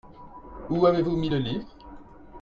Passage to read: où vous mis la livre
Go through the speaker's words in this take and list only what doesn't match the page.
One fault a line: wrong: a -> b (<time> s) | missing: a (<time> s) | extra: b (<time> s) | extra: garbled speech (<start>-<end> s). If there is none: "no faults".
extra: avez (0.8 s)
wrong: la -> le (1.3 s)